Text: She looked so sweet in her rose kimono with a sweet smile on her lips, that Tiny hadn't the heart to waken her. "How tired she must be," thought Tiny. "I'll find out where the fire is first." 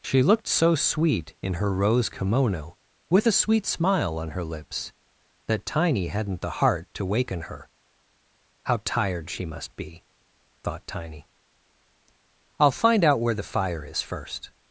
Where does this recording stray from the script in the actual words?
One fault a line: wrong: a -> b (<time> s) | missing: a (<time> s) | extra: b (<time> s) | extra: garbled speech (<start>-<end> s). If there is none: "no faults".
no faults